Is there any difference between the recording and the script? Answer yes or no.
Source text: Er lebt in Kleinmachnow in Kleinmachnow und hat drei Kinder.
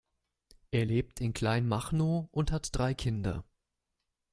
yes